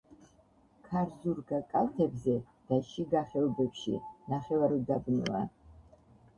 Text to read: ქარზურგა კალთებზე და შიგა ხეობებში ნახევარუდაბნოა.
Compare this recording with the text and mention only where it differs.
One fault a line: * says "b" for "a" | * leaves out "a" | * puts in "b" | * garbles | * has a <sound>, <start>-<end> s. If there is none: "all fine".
all fine